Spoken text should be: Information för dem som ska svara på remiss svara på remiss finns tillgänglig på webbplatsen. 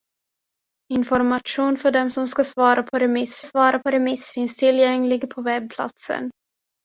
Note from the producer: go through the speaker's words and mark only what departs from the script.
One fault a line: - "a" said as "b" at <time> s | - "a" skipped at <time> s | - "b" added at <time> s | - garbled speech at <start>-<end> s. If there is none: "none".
none